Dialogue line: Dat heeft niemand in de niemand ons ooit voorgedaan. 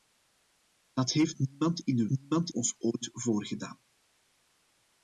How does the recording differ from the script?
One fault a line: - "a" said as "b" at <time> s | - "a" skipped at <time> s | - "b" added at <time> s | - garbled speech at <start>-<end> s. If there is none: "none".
none